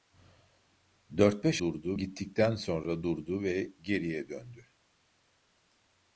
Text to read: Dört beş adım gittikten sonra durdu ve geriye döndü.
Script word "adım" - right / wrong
wrong